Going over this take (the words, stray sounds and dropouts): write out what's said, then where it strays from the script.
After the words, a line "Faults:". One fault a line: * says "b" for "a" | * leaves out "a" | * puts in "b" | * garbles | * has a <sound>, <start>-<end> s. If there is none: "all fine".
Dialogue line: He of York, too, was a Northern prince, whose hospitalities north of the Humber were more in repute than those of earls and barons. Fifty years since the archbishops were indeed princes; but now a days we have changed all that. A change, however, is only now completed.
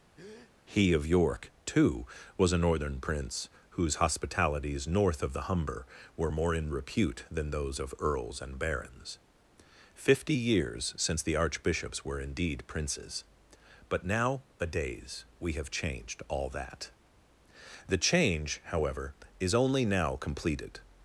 He of York, too, was a Northern prince, whose hospitalities north of the Humber were more in repute than those of earls and barons. Fifty years since the archbishops were indeed princes; but now a days we have changed all that. The change, however, is only now completed.
Faults:
* has a breath, 0.2-0.5 s
* says "The" for "A"